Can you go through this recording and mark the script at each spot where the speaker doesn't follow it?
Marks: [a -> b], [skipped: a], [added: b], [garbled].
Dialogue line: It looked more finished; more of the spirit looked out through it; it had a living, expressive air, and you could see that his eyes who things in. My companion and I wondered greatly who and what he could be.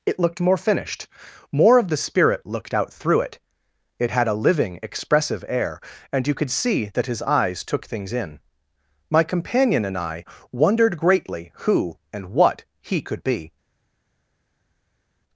It looked more finished; more of the spirit looked out through it; it had a living, expressive air, and you could see that his eyes [who -> took] things in. My companion and I wondered greatly who and what he could be.